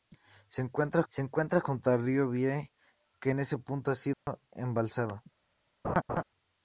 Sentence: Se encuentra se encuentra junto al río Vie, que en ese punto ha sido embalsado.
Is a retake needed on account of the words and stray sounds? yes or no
yes